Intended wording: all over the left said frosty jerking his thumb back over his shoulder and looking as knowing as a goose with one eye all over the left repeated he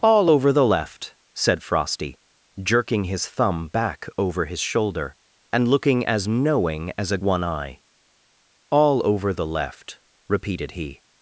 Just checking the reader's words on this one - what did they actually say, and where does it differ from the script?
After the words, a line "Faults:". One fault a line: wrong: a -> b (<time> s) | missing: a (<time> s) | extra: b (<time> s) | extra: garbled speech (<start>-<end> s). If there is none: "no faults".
all over the left said frosty jerking his thumb back over his shoulder and looking as knowing as a one eye all over the left repeated he
Faults:
missing: goose with (7.2 s)